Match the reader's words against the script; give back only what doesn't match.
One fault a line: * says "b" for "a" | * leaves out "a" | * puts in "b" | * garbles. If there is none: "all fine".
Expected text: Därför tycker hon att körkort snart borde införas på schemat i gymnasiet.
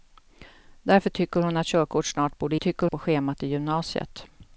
* says "tycker" for "införas"